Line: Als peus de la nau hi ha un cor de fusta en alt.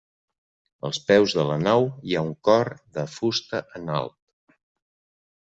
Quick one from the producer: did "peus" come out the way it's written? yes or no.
yes